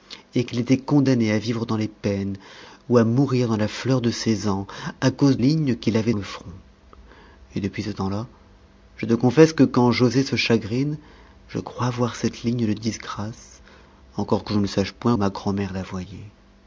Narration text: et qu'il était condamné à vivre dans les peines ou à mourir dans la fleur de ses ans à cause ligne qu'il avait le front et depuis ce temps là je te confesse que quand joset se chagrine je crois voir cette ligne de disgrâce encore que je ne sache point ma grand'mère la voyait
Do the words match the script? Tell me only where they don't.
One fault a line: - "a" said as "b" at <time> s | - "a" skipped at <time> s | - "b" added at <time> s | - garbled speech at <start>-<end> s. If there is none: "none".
none